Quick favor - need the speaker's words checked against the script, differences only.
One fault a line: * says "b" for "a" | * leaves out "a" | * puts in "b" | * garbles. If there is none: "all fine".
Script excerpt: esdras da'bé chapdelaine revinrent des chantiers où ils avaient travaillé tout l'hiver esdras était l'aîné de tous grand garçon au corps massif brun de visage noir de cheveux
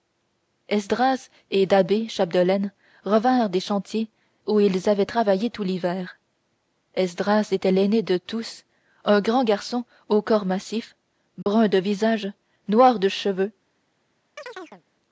* puts in "et"
* puts in "un"